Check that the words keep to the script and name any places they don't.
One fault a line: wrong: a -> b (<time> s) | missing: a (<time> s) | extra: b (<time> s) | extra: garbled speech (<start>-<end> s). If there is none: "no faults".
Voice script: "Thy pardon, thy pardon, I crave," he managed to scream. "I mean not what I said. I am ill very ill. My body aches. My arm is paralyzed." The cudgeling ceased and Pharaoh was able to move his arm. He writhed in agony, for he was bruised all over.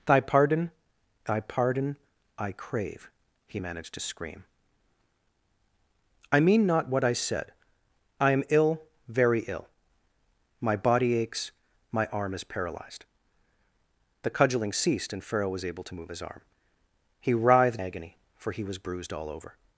missing: in (17.8 s)